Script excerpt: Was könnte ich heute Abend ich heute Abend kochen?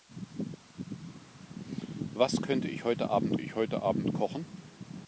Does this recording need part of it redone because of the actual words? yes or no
no